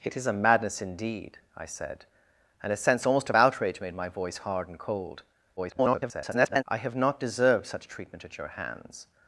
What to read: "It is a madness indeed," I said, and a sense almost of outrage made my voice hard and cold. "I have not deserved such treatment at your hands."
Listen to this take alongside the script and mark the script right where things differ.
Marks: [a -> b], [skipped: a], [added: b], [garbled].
"It is a madness indeed," I said, and a sense almost of outrage made my voice hard and cold. [garbled] "I have not deserved such treatment at your hands."